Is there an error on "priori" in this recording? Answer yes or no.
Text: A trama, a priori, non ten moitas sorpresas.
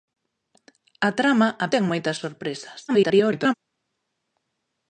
yes